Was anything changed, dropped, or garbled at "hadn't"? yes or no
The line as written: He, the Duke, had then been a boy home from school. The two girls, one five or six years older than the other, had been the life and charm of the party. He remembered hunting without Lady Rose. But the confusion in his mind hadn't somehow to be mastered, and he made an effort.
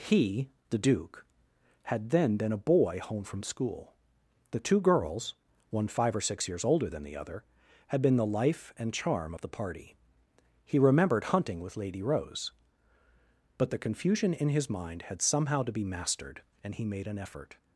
yes